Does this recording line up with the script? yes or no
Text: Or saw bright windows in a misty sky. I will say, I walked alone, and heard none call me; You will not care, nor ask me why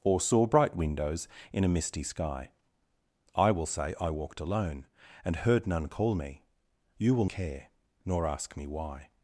no